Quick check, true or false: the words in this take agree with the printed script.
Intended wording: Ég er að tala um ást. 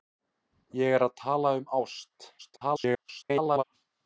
false